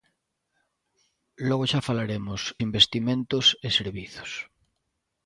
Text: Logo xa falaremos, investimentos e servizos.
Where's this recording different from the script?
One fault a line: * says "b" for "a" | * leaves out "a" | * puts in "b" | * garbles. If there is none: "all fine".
all fine